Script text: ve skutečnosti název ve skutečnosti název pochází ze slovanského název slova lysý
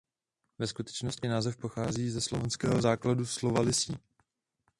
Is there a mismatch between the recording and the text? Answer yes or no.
yes